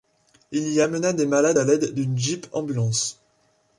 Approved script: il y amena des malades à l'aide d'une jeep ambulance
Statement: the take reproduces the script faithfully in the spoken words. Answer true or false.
true